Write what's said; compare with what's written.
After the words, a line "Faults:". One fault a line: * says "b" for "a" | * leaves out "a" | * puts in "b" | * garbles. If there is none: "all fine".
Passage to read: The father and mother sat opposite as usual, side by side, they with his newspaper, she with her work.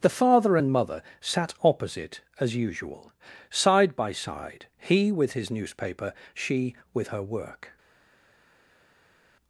The father and mother sat opposite as usual, side by side, he with his newspaper, she with her work.
Faults:
* says "he" for "they"